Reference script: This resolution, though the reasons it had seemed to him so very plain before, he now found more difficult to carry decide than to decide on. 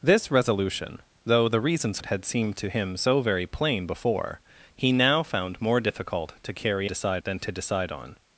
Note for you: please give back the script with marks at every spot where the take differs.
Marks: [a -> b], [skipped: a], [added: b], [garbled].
This resolution, though the reasons it had seemed to him so very plain before, he now found more difficult to carry decide than to decide on.